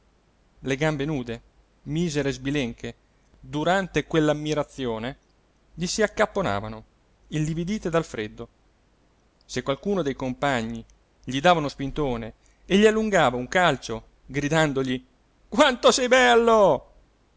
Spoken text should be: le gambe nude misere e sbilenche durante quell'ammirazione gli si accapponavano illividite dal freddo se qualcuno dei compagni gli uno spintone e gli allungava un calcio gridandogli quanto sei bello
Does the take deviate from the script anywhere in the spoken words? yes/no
yes